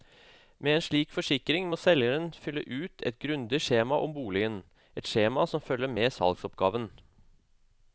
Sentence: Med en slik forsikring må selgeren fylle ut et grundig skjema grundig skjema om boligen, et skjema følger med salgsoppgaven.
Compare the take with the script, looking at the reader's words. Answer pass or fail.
fail